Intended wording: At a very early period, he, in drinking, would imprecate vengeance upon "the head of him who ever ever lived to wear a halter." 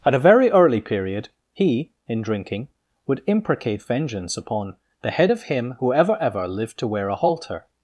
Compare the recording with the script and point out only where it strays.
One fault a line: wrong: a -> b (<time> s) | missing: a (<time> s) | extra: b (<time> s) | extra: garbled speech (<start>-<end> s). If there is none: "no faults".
no faults